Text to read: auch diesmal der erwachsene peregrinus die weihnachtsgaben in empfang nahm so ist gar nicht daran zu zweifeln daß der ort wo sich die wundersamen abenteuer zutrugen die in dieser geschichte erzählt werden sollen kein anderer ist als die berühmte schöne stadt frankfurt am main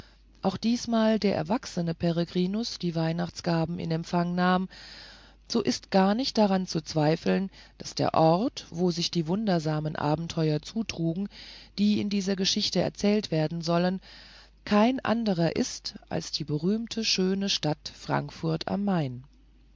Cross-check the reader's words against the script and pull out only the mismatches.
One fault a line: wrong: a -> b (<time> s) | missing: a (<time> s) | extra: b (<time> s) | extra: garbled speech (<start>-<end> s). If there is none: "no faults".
no faults